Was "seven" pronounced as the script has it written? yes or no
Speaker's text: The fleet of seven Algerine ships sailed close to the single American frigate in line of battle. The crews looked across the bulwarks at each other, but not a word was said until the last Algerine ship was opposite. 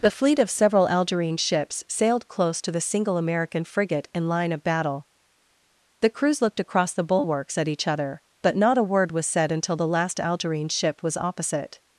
no